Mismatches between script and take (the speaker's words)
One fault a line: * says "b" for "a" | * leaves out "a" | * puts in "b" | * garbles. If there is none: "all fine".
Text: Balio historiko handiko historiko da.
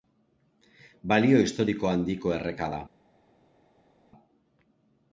* says "erreka" for "historiko"